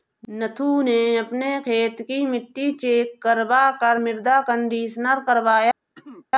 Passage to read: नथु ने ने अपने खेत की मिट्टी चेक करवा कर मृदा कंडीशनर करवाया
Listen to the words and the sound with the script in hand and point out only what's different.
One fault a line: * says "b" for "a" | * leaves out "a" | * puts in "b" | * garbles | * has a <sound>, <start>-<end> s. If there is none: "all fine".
* leaves out "ने"
* has a throat clearing, 6.0-6.3 s